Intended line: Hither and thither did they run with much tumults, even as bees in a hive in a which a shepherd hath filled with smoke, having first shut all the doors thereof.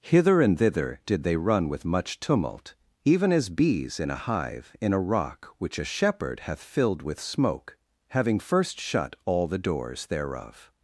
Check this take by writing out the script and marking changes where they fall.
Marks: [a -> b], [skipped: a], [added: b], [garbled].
Hither and thither did they run with much [tumults, -> tumult] even as bees in a hive in a [added: rock] which a shepherd hath filled with smoke, having first shut all the doors thereof.